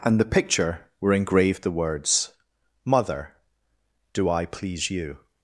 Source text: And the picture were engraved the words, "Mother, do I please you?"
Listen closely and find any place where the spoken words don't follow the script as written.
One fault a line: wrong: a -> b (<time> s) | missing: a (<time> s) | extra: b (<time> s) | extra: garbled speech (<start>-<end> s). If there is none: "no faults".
no faults